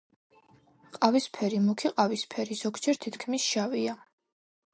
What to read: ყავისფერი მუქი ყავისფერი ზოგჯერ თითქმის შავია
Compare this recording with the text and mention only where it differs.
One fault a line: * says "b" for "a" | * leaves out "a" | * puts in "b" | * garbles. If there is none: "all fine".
all fine